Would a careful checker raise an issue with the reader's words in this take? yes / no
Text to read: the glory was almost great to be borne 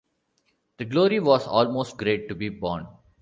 no